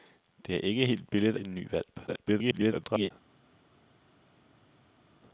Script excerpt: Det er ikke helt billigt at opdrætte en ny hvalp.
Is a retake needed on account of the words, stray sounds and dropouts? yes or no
yes